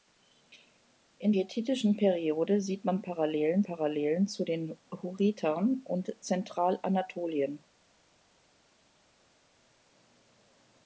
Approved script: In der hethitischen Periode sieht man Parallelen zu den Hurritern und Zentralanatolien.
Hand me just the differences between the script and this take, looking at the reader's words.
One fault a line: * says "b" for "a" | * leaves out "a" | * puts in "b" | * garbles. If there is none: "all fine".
* leaves out "der"
* puts in "Parallelen"